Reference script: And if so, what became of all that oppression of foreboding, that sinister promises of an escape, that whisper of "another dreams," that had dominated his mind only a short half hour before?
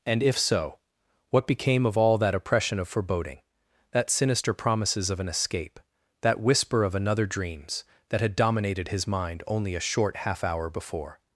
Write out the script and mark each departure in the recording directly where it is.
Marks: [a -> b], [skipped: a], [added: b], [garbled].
And if so, what became of all that oppression of foreboding, that sinister promises of an escape, that whisper of "another dreams," that had dominated his mind only a short half hour before?